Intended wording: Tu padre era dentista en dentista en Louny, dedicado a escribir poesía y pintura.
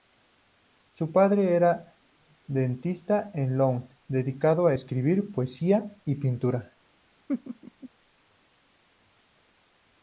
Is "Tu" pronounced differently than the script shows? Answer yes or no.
yes